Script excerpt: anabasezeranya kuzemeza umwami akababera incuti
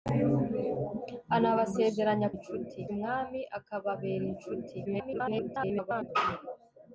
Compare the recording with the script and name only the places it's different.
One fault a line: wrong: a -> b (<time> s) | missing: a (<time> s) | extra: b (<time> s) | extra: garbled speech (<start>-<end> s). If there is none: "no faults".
wrong: kuzemeza -> incuti (2.3 s)
extra: garbled speech (4.9-6.1 s)